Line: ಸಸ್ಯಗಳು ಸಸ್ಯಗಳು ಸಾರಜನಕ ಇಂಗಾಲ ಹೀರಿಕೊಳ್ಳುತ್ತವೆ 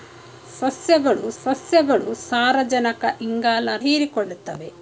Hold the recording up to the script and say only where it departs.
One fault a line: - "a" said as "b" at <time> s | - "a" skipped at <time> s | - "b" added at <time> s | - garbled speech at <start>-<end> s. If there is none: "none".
none